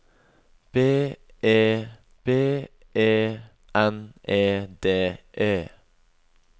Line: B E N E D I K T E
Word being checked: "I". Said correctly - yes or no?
no